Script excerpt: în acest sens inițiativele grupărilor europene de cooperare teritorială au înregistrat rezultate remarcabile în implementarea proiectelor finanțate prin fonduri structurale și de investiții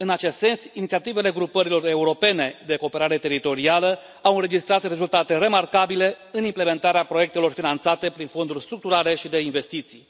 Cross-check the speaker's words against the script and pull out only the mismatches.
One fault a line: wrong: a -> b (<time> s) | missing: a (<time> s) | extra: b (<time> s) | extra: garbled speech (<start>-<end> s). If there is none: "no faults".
no faults